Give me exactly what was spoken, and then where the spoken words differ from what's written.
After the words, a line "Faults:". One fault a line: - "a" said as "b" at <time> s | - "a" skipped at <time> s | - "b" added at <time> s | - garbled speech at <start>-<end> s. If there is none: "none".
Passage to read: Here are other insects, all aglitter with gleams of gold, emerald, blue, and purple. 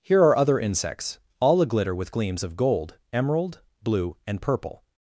Here are other insects, all aglitter with gleams of gold, emerald, blue, and purple.
Faults:
none